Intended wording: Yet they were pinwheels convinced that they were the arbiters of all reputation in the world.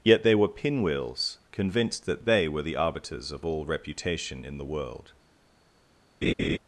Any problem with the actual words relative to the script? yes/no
no